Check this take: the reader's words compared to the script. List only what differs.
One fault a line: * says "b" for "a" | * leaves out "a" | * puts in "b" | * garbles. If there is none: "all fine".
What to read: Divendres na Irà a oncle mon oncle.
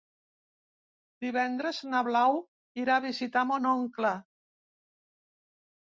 * puts in "Blau"
* says "visitar" for "oncle"